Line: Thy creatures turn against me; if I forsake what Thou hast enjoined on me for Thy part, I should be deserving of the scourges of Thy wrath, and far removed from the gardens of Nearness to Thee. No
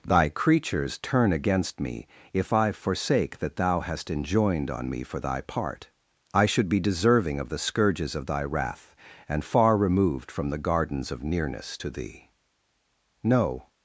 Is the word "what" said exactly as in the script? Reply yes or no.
no